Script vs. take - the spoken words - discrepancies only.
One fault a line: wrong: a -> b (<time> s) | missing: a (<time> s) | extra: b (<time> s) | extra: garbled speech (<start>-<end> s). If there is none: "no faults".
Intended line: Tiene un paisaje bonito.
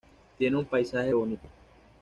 no faults